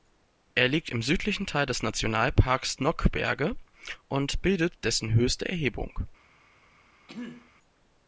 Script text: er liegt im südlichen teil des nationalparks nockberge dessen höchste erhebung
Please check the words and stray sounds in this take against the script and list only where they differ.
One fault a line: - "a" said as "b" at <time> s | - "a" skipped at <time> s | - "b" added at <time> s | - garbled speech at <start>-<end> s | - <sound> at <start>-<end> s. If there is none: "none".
- "und bildet" added at 4.1 s
- throat clearing at 7.1-7.5 s